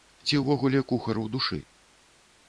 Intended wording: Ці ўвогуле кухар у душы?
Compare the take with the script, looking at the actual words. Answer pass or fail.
pass